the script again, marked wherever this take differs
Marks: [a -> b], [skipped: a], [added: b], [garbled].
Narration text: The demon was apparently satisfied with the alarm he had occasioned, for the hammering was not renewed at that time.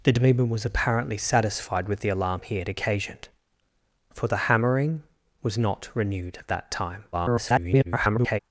The demon was apparently satisfied with the alarm he had occasioned, for the hammering was not renewed at that time. [garbled]